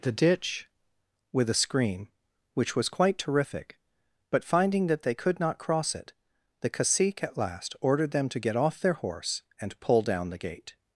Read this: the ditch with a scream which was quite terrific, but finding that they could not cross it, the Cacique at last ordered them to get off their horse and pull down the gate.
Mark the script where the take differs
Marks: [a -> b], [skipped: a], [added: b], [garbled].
the ditch with a scream which was quite terrific, but finding that they could not cross it, the Cacique at last ordered them to get off their horse and pull down the gate.